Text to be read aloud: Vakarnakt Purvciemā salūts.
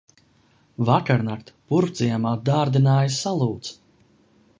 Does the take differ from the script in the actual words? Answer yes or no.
yes